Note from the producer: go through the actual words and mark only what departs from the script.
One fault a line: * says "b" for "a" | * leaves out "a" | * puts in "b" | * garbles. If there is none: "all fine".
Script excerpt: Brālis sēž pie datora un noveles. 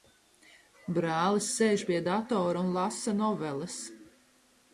* puts in "lasa"